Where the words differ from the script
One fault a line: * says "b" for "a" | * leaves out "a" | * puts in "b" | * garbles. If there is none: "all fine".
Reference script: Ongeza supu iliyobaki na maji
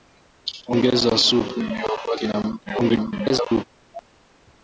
* garbles